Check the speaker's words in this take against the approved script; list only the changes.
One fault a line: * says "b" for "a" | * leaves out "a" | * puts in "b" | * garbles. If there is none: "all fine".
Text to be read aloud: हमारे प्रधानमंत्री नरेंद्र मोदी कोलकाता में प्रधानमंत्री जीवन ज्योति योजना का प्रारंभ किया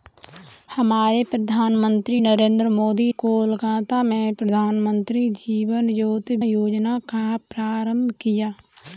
all fine